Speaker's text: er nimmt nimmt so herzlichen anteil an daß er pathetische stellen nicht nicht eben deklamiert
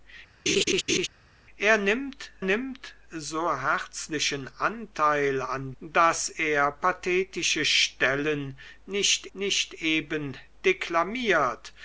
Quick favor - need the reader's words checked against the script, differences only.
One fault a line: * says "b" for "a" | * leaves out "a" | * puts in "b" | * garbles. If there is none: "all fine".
all fine